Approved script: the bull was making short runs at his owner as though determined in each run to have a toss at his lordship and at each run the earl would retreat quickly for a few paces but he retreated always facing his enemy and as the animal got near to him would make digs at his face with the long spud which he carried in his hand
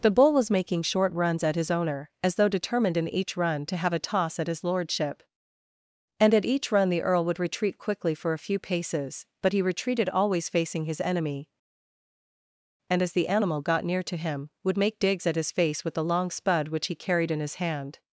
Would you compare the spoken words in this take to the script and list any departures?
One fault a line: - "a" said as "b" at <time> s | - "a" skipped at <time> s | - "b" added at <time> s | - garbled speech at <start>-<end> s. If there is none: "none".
none